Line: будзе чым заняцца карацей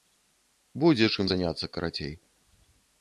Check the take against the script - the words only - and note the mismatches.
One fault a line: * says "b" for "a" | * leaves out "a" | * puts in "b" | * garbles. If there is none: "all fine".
all fine